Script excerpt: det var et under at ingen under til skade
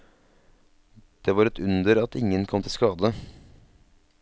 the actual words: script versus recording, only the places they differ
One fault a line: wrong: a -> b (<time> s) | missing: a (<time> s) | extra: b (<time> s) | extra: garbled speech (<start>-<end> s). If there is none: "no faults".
wrong: under -> kom (2.5 s)